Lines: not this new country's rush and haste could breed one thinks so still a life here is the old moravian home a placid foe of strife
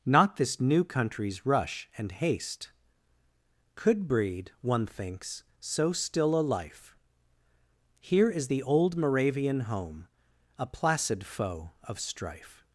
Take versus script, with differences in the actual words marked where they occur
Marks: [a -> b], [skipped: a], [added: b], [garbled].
not this new country's rush and haste could breed one thinks so still a life here is the old moravian home a placid foe of strife